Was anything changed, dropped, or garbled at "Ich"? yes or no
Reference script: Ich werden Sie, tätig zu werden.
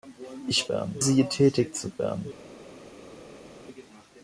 no